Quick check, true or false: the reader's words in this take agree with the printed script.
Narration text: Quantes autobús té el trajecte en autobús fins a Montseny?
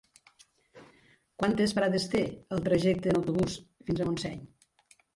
false